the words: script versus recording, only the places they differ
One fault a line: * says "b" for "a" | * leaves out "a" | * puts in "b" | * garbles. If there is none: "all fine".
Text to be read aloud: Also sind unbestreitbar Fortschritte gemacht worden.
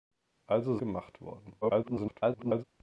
* leaves out "sind unbestreitbar Fortschritte"
* garbles